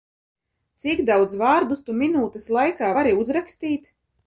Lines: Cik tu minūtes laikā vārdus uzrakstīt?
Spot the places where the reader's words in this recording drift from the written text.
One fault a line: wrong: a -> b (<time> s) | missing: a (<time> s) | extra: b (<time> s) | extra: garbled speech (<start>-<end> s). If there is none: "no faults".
extra: daudz vārdus (1.1 s)
wrong: vārdus -> vari (3.0 s)